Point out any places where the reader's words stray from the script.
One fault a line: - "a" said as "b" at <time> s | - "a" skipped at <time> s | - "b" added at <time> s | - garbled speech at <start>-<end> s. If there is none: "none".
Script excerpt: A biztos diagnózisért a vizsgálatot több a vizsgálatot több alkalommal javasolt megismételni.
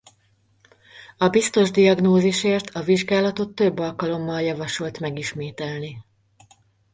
- "a vizsgálatot több" skipped at 3.8 s